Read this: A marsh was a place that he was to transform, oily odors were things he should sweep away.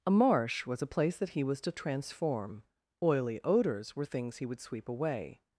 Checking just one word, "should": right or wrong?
wrong